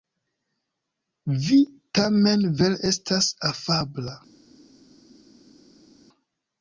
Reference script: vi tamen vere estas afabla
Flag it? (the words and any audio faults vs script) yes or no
no